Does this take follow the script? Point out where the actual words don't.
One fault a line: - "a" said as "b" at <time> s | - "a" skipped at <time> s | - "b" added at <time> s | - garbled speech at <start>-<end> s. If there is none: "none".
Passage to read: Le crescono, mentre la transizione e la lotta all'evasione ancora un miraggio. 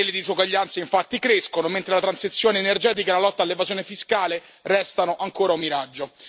- "disuguaglianze infatti" added at 0.1 s
- "energetica" added at 2.6 s
- "fiscale restano" added at 3.8 s